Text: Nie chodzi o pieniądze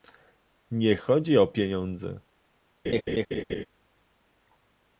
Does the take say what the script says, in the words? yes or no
yes